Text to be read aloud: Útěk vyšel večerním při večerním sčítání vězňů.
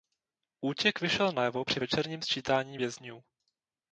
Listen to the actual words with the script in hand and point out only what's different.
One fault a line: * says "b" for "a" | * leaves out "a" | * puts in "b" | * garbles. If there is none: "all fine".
* says "najevo" for "večerním"